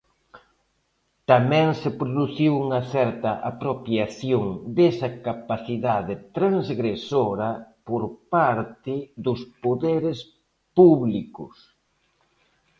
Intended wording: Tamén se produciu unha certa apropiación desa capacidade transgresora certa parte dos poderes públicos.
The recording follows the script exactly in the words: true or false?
false